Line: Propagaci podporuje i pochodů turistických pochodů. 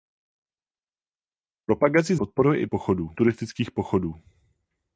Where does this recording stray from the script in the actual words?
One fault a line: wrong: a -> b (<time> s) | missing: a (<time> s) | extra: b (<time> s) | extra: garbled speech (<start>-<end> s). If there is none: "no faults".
no faults